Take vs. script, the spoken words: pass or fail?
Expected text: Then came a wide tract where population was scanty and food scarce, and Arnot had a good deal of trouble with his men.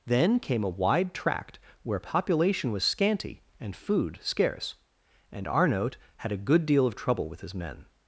pass